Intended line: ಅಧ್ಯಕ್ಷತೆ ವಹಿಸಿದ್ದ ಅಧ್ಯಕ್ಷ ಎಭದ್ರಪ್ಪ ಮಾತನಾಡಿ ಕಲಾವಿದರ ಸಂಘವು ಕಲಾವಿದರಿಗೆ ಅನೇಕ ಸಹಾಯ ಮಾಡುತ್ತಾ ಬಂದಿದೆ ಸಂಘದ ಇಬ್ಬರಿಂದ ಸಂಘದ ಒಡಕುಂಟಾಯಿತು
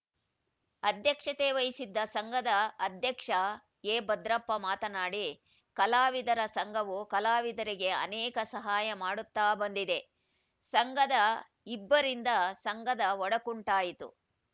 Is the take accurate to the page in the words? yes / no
no